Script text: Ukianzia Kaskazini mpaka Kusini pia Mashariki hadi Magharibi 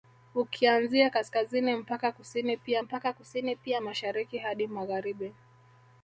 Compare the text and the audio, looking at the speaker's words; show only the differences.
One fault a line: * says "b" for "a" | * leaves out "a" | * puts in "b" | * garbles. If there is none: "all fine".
* puts in "mpaka Kusini pia"